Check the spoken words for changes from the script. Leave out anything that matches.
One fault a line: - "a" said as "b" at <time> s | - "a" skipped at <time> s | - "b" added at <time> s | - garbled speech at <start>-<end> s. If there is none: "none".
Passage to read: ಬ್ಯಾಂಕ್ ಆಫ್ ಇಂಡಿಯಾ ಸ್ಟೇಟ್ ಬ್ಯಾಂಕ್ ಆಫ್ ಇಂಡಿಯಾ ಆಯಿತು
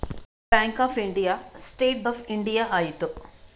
- "ಬ್ಯಾಂಕ್" skipped at 2.0 s